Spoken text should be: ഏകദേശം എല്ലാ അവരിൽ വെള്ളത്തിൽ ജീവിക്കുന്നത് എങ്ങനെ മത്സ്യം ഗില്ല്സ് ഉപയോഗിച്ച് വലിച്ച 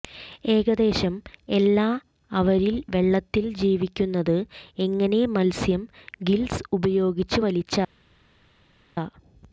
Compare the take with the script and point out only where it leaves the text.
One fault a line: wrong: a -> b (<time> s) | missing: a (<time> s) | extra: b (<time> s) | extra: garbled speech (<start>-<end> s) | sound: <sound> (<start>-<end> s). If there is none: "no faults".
no faults